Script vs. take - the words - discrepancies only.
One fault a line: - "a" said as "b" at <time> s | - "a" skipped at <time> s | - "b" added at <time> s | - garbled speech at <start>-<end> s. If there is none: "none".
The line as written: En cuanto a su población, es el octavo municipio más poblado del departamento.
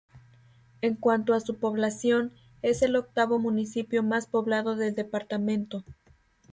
none